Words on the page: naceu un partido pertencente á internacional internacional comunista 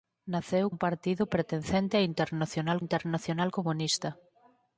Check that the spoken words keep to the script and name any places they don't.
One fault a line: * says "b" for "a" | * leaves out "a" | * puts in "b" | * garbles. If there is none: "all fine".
all fine